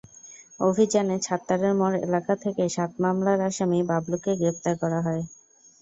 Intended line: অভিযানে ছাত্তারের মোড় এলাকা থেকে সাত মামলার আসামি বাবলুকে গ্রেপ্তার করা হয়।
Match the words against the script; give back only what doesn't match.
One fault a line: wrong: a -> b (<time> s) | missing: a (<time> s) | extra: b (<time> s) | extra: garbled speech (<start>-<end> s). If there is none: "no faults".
no faults